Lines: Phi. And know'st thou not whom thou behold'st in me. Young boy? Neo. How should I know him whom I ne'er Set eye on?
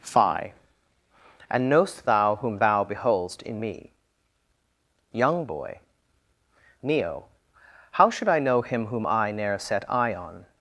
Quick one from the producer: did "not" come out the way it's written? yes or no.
no